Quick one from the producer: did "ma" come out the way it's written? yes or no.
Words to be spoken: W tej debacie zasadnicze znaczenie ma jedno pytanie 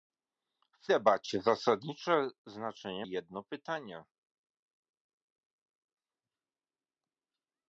no